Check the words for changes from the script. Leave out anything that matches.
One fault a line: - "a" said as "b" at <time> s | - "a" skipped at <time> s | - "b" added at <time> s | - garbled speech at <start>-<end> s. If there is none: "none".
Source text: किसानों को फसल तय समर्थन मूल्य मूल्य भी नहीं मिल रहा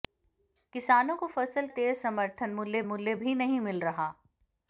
none